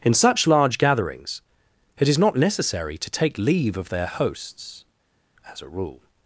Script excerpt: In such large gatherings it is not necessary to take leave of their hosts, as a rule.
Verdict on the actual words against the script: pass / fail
pass